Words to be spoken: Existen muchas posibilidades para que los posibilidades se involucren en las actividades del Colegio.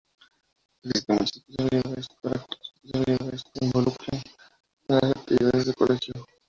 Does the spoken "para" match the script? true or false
true